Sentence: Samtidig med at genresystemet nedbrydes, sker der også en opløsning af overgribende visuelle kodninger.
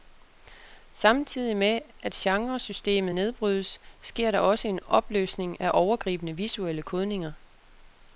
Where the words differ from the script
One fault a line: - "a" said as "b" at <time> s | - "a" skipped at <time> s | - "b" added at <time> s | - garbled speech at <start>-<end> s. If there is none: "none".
none